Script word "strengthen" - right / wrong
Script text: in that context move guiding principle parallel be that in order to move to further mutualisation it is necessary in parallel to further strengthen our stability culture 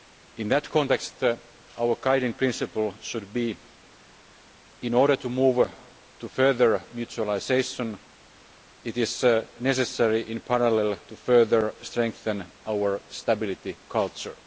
right